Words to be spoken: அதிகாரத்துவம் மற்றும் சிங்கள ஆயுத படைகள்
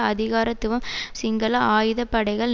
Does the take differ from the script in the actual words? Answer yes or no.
yes